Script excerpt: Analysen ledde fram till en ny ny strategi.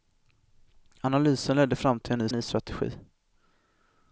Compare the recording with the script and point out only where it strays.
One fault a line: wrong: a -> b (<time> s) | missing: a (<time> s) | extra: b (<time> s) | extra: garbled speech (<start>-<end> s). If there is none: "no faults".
no faults